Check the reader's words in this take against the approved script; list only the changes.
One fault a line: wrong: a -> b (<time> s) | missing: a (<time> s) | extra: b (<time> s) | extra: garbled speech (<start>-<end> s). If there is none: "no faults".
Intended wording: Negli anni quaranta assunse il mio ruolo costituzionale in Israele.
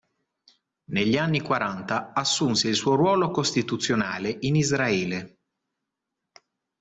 wrong: mio -> suo (2.8 s)